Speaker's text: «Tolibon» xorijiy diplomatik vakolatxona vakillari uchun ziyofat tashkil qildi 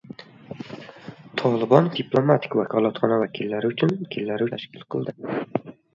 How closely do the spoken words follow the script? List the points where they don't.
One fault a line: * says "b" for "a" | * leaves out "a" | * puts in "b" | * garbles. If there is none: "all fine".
* leaves out "xorijiy"
* says "vakillari" for "ziyofat"